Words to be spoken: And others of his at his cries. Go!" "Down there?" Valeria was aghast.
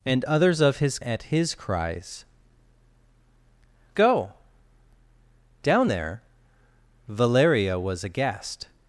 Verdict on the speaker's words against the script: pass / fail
pass